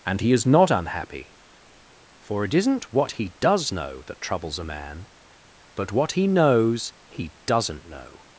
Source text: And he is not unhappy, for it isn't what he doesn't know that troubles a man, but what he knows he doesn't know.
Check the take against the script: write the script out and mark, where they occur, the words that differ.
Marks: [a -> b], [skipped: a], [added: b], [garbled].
And he is not unhappy, for it isn't what he [doesn't -> does] know that troubles a man, but what he knows he doesn't know.